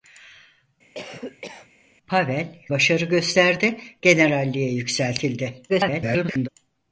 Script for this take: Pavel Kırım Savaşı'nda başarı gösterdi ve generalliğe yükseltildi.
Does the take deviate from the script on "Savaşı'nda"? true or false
true